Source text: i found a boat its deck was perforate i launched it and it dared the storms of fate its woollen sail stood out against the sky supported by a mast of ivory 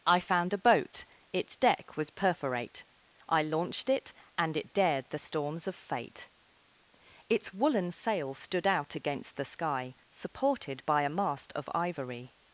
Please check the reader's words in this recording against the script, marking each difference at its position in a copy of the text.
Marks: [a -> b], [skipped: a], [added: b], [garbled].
i found a boat its deck was perforate i launched it and it dared the storms of fate its woollen sail stood out against the sky supported by a mast of ivory